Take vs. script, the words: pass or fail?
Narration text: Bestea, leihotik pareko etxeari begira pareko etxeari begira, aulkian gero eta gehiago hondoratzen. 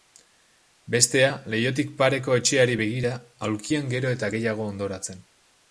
fail